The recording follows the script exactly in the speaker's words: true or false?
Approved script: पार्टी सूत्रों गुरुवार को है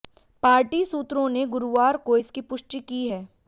false